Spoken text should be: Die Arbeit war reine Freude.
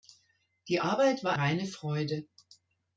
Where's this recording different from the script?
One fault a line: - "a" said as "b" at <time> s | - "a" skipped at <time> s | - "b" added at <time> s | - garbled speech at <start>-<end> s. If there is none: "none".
none